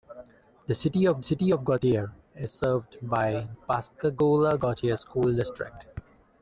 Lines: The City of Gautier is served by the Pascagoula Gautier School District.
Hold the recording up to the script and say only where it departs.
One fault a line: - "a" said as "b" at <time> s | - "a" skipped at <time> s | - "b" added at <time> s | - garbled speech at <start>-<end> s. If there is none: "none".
- "City of" added at 1.2 s
- "the" skipped at 3.5 s